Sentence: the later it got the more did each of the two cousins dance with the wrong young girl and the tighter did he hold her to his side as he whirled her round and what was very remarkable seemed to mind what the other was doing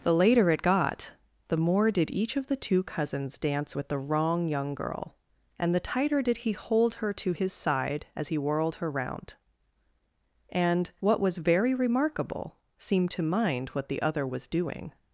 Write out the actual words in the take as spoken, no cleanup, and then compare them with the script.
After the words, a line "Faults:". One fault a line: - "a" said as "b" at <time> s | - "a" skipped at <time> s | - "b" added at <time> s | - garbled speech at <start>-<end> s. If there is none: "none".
the later it got the more did each of the two cousins dance with the wrong young girl and the tighter did he hold her to his side as he whirled her round and what was very remarkable seemed to mind what the other was doing
Faults:
none